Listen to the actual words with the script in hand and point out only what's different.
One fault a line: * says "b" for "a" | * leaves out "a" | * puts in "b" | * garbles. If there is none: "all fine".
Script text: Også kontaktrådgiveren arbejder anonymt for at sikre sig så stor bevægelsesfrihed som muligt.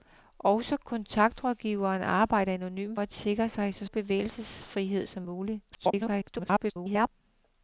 * leaves out "for"
* leaves out "stor"
* garbles